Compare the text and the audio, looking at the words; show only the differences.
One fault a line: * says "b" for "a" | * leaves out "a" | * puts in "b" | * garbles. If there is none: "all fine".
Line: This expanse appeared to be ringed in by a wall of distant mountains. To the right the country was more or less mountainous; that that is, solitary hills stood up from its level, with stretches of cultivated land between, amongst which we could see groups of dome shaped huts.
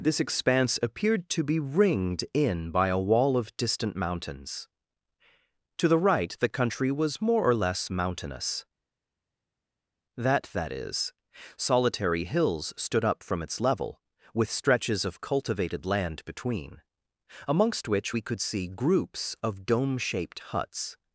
all fine